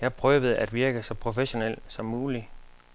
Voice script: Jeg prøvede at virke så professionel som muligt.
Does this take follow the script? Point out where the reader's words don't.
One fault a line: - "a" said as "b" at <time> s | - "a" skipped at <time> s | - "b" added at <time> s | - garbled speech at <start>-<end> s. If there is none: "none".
none